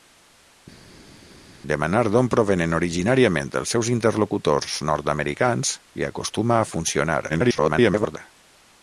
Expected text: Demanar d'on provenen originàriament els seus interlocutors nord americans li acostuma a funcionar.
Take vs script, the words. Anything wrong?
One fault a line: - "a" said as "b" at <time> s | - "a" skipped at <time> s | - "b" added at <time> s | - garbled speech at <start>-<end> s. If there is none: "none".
- garbled speech at 7.3-8.2 s